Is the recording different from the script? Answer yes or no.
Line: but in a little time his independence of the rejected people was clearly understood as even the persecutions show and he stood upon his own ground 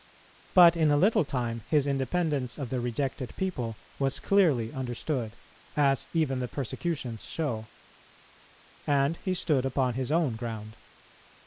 no